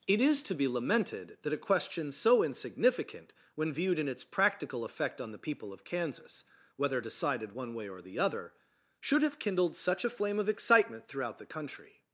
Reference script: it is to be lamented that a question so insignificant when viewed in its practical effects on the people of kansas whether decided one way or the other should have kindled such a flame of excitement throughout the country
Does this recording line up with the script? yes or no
no